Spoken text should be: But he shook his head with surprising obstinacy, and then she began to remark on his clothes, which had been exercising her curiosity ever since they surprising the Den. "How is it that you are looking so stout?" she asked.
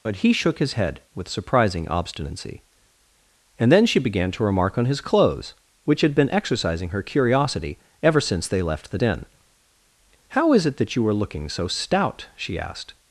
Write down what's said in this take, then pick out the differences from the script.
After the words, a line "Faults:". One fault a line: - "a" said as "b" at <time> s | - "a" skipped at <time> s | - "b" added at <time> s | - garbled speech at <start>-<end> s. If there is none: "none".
But he shook his head with surprising obstinacy, and then she began to remark on his clothes, which had been exercising her curiosity ever since they left the Den. "How is it that you are looking so stout?" she asked.
Faults:
- "surprising" said as "left" at 8.6 s